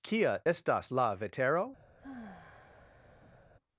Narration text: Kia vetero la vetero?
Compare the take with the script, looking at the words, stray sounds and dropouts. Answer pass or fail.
fail